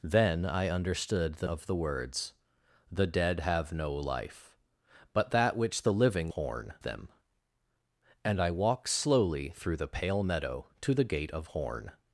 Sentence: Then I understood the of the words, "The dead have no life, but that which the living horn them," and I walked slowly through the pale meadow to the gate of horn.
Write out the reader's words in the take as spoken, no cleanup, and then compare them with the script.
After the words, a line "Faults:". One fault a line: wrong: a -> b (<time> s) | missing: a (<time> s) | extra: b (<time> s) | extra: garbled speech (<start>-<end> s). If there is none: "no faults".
Then I understood the of the words, "The dead have no life, but that which the living horn them," and I walked slowly through the pale meadow to the gate of horn.
Faults:
no faults